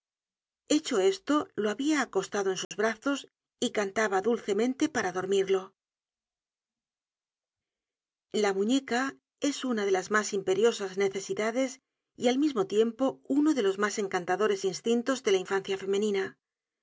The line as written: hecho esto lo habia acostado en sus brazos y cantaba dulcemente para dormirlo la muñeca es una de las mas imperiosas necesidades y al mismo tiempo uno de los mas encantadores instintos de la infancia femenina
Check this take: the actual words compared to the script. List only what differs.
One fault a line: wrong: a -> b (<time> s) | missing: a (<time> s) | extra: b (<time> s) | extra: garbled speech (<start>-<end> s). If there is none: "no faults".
no faults